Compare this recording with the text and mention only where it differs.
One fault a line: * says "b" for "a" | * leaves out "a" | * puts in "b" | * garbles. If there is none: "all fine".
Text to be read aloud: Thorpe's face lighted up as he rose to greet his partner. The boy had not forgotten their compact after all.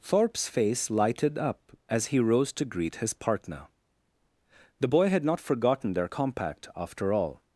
all fine